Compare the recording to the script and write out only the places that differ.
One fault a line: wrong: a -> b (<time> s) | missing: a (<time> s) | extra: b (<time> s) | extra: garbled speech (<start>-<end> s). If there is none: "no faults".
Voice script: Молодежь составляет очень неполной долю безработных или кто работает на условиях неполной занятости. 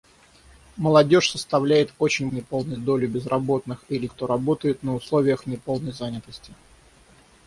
no faults